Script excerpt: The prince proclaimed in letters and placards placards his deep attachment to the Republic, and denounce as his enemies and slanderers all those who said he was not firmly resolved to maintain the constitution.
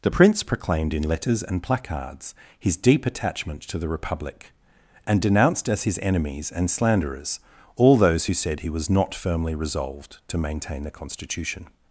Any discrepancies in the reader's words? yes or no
yes